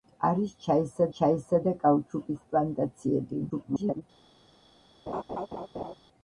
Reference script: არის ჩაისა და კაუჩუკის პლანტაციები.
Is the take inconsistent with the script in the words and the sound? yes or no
yes